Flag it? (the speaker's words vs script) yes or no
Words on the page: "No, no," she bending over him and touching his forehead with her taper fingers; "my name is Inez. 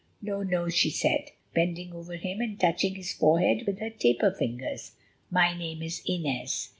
yes